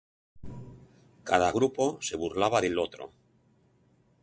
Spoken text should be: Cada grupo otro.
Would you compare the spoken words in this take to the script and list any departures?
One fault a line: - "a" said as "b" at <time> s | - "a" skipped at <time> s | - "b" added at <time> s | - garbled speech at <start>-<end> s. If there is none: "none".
- "se burlaba del" added at 2.0 s